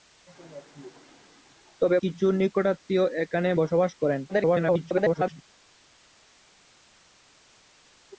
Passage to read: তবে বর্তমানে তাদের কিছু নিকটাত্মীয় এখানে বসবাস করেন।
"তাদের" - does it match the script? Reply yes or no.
no